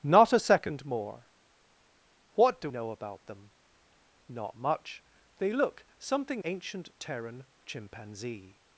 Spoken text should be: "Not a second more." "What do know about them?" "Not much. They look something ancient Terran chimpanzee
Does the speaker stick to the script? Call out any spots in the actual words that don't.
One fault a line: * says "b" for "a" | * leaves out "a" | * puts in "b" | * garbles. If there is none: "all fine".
all fine